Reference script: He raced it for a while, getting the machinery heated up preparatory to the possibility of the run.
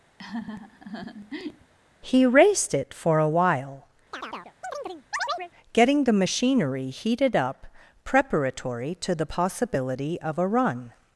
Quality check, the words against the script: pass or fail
fail